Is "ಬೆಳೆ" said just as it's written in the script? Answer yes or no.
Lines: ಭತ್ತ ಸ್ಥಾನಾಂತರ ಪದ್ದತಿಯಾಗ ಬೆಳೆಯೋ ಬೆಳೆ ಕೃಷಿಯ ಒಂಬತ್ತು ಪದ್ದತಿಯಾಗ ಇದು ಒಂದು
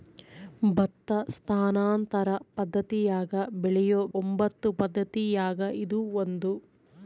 no